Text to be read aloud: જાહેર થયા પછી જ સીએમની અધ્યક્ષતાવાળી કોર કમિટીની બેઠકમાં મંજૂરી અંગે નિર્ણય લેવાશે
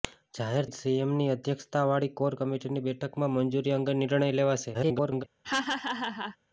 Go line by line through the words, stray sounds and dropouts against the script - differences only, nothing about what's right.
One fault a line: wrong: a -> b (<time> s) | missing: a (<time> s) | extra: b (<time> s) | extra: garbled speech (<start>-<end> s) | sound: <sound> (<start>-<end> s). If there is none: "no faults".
missing: થયા પછી (0.7 s)
extra: garbled speech (4.7-5.2 s)
sound: laugh (5.4-6.4 s)